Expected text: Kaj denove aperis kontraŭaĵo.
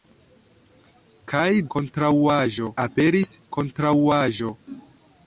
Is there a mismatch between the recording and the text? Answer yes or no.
yes